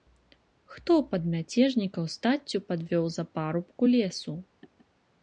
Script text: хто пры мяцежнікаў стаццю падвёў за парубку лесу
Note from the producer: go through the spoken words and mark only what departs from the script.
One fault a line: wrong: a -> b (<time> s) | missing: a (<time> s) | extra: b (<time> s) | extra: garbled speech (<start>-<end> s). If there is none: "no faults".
wrong: пры -> пад (1.1 s)